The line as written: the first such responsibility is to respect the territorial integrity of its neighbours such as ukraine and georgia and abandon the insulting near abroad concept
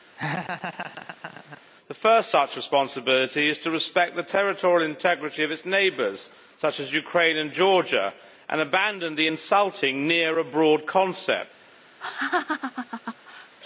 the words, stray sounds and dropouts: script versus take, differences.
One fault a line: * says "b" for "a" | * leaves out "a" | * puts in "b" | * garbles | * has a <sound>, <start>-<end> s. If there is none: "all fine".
* has a laugh, 0.2-1.6 s
* has a laugh, 12.0-13.5 s